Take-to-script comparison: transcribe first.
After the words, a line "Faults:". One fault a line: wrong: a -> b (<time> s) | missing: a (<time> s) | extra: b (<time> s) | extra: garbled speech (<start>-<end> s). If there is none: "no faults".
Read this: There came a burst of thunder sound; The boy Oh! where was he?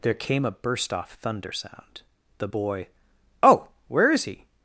There came a burst off thunder sound; The boy Oh! where is he?
Faults:
wrong: of -> off (0.9 s)
wrong: was -> is (4.1 s)